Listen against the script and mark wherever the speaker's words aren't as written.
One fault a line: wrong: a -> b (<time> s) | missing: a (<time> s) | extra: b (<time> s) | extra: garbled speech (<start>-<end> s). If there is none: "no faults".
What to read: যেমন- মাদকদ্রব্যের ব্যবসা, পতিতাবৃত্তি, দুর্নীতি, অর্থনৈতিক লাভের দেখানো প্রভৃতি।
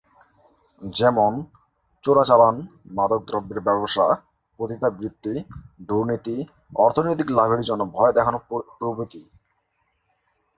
extra: চোরাচালান (2.0 s)
extra: জন্য ভয় (7.6 s)